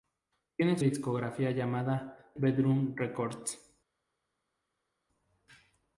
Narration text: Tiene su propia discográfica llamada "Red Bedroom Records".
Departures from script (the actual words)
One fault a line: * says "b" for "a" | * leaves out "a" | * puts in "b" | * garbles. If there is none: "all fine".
* leaves out "su propia"
* leaves out "Red"